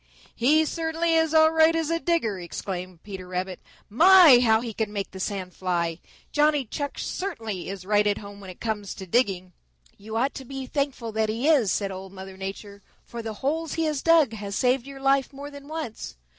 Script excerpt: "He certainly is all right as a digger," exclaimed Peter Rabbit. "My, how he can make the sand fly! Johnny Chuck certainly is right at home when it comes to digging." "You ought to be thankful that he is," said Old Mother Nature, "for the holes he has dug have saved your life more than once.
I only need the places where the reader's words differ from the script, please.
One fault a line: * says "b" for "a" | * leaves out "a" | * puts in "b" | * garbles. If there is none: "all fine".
all fine